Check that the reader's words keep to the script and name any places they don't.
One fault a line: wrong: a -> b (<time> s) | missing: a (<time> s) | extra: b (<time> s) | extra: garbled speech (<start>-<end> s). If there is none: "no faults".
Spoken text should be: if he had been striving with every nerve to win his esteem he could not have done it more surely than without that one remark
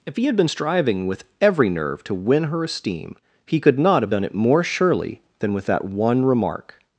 wrong: his -> her (2.4 s)
wrong: without -> with (5.5 s)